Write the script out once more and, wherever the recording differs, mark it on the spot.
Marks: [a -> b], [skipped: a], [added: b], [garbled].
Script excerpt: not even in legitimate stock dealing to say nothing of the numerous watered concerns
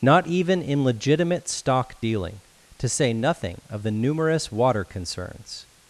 not even in legitimate stock dealing to say nothing of the numerous [watered -> water] concerns